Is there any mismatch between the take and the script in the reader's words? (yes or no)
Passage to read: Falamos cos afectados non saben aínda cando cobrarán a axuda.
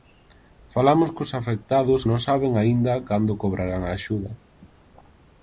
no